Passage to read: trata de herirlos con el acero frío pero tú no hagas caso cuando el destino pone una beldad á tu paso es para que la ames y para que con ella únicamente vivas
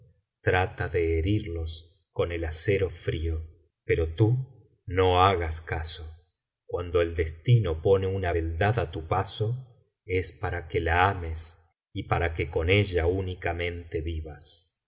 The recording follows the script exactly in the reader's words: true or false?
true